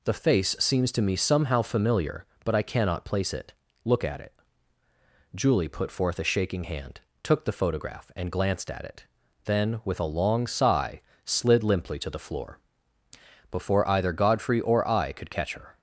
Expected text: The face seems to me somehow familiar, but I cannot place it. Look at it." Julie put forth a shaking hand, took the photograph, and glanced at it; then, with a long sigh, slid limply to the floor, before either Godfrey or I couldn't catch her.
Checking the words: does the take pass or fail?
fail